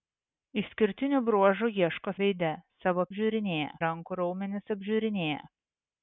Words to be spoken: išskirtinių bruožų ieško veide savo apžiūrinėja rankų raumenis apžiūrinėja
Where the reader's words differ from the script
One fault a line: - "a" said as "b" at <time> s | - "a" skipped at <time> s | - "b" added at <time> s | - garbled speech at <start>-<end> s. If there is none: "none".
none